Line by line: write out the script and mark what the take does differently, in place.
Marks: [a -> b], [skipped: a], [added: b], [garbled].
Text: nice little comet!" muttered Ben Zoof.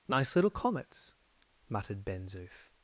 nice little [comet!" -> comets] muttered Ben Zoof.